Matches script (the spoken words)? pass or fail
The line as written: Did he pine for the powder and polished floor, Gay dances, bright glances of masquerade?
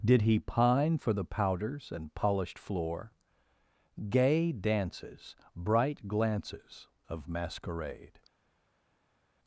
fail